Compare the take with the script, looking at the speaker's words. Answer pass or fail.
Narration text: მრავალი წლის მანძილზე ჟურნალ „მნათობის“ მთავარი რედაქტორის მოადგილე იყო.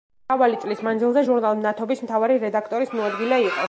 pass